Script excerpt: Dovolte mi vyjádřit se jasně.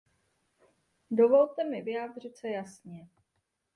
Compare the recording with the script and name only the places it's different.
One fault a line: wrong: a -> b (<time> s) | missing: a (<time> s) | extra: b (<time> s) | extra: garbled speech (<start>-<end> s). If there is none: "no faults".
no faults